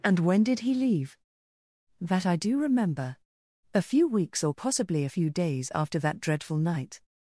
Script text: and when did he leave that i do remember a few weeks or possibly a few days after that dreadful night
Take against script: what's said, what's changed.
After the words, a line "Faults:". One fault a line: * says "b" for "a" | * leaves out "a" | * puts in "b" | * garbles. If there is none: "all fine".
and when did he leave that i do remember a few weeks or possibly a few days after that dreadful night
Faults:
all fine